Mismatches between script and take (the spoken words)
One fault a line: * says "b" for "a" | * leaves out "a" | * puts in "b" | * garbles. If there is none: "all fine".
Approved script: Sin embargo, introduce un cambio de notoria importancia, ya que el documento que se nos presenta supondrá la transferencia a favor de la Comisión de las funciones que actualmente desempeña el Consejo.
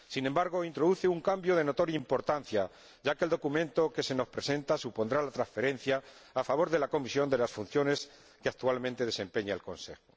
all fine